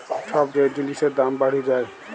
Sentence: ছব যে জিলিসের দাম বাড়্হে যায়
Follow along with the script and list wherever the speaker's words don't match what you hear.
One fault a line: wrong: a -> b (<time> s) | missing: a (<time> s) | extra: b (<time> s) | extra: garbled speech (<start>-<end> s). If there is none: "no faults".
no faults